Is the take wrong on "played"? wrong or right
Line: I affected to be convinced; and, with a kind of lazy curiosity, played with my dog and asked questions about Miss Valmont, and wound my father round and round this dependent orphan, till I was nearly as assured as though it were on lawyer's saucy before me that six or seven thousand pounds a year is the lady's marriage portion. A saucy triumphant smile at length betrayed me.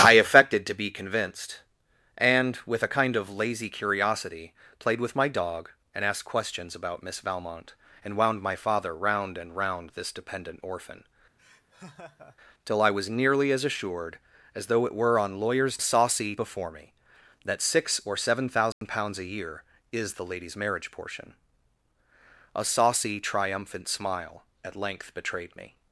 right